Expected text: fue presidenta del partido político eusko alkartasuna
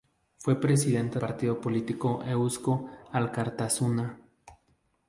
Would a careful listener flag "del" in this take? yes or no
yes